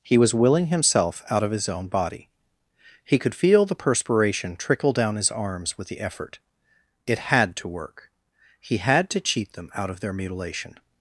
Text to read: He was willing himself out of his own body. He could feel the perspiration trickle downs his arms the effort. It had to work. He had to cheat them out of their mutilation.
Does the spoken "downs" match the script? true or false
false